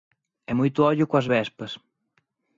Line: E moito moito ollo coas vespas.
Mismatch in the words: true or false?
true